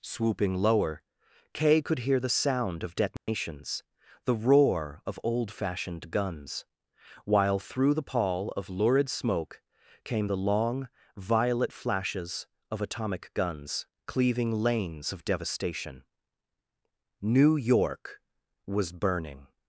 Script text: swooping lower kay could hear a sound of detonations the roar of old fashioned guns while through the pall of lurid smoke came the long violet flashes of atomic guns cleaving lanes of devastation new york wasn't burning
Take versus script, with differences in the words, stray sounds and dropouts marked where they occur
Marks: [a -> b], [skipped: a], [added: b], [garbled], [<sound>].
swooping lower kay could hear [a -> the] sound of detonations [dropout] the roar of old fashioned guns while through the pall of lurid smoke came the long violet flashes of atomic guns cleaving lanes of devastation new york [wasn't -> was] burning